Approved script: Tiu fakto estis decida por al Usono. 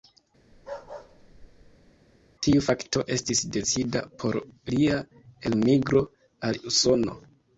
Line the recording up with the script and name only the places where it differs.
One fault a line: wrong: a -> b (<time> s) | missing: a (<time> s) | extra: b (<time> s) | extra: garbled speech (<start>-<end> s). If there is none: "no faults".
extra: lia elmigro (4.8 s)